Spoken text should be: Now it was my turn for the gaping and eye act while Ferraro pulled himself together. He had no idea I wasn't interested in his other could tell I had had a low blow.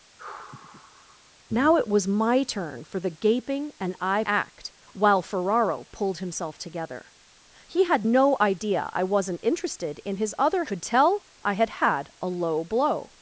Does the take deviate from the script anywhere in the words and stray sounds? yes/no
yes